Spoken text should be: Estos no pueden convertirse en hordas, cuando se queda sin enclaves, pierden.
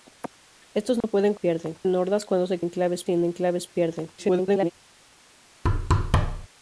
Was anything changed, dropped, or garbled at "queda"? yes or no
yes